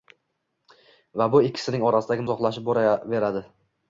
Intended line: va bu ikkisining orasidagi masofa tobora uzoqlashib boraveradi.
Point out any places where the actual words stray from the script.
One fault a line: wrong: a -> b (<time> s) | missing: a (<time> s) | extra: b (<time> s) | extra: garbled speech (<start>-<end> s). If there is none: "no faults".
missing: masofa tobora (2.2 s)